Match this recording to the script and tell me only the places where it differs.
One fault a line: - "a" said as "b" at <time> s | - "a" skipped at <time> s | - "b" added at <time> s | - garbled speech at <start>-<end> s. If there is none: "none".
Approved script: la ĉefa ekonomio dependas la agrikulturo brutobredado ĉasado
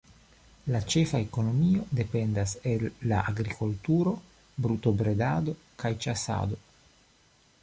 - "el" added at 2.7 s
- "kaj" added at 5.8 s